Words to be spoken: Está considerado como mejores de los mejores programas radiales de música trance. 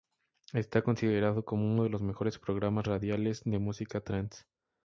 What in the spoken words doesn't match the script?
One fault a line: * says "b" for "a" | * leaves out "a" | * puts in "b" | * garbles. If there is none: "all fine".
* says "uno" for "mejores"